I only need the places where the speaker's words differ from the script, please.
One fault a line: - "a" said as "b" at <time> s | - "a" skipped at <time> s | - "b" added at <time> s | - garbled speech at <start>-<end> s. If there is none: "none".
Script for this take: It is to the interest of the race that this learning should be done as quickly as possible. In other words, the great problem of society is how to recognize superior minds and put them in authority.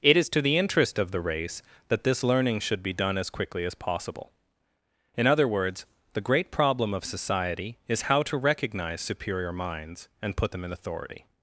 none